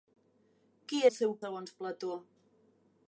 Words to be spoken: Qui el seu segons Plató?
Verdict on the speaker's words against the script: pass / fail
pass